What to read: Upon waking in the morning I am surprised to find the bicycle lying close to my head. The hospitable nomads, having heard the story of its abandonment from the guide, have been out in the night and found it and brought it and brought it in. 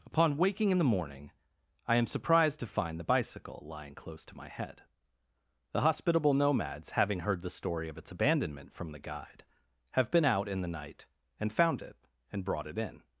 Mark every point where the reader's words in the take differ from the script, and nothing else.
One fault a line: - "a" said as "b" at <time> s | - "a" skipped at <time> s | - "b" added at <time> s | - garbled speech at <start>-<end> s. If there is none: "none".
- "and brought it" skipped at 12.8 s